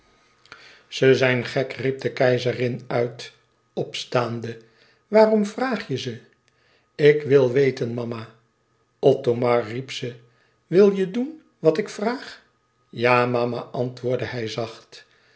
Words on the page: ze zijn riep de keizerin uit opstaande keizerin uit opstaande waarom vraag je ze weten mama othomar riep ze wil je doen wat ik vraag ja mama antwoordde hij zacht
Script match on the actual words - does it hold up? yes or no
no